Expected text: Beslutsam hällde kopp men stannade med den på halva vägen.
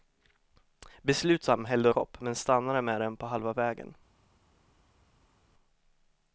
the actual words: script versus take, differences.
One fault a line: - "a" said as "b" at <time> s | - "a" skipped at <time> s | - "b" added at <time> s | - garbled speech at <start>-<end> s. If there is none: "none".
none